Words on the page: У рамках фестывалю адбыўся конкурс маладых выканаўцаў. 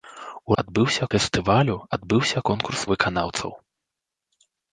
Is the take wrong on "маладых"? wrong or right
wrong